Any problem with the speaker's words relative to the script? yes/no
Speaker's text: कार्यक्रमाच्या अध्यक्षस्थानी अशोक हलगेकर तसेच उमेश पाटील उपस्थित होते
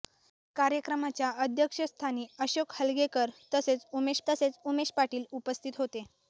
yes